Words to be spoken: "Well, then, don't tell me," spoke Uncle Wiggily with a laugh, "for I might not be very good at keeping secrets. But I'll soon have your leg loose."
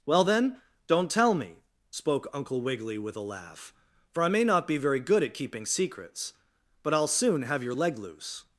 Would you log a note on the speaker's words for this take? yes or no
yes